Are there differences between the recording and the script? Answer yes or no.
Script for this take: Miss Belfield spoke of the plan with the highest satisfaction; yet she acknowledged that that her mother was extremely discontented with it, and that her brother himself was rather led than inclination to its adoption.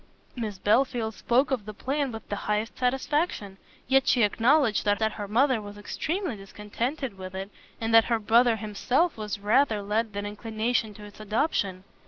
no